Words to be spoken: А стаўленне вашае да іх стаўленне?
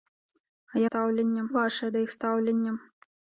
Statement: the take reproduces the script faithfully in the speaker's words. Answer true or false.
true